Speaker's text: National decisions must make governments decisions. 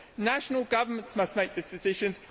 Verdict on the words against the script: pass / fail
fail